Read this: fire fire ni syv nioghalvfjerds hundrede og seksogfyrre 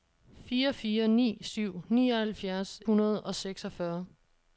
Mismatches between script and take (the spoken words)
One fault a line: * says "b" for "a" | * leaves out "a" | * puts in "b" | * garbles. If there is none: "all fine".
all fine